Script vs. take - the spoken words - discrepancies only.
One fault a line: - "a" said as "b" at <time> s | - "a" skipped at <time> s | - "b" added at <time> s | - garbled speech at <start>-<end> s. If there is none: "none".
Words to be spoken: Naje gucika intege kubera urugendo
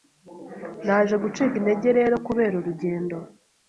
- "rero" added at 2.0 s